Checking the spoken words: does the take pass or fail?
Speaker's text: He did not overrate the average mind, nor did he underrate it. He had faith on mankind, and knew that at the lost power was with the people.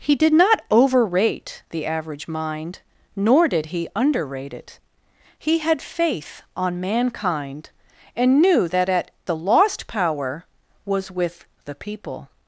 pass